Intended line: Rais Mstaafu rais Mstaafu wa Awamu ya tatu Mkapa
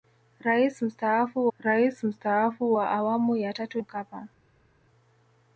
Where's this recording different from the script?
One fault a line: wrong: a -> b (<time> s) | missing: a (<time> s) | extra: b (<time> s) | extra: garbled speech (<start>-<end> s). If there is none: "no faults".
no faults